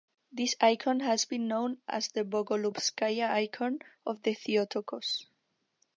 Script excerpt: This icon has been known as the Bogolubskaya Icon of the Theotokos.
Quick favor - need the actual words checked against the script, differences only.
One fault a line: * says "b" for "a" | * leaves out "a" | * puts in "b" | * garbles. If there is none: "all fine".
all fine